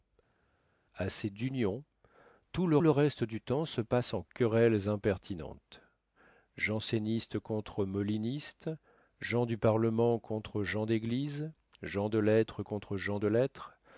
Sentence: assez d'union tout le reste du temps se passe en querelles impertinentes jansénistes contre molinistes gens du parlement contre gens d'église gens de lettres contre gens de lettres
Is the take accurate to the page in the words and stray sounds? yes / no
no